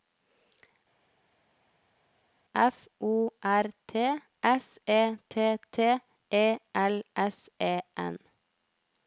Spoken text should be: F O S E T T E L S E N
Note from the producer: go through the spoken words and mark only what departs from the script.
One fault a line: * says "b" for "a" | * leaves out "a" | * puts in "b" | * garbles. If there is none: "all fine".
* puts in "R T"